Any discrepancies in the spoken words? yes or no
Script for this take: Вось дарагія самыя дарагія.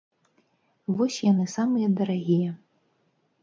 yes